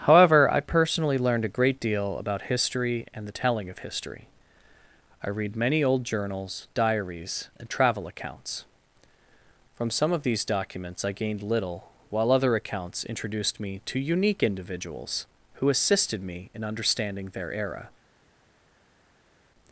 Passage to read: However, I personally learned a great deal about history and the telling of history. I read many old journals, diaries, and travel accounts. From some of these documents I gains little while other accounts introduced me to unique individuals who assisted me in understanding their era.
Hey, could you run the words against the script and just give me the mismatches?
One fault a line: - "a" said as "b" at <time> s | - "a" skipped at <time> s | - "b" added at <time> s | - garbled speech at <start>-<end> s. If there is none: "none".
- "gains" said as "gained" at 11.1 s